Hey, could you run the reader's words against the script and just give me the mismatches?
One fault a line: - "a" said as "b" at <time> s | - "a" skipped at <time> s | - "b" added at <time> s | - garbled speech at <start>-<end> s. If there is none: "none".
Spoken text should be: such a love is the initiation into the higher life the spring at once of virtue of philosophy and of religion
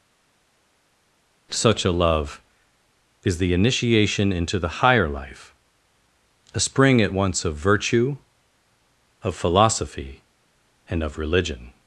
- "the" said as "a" at 6.5 s